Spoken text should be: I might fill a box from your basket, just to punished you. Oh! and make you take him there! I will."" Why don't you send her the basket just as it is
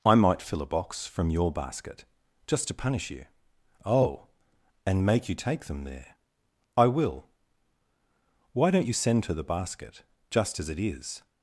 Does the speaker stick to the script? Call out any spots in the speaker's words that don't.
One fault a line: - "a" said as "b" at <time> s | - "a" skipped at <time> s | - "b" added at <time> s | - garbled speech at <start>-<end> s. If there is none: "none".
- "punished" said as "punish" at 2.7 s
- "him" said as "them" at 5.7 s